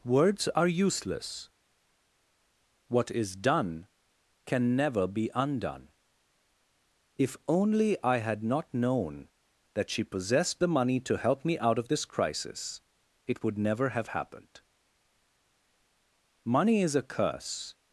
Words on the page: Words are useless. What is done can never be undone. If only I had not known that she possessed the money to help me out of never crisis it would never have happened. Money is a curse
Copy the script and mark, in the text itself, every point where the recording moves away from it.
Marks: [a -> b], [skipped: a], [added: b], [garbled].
Words are useless. What is done can never be undone. If only I had not known that she possessed the money to help me out of [never -> this] crisis it would never have happened. Money is a curse